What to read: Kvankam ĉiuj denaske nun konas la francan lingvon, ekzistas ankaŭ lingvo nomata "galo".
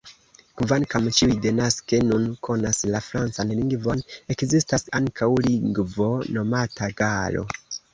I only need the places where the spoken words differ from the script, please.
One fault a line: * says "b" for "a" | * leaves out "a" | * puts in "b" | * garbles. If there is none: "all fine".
all fine